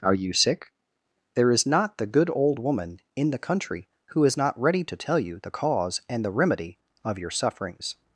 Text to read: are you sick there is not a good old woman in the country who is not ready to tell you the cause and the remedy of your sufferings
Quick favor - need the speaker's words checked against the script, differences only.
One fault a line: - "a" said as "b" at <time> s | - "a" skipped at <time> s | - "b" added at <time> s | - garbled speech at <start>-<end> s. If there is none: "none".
- "a" said as "the" at 2.0 s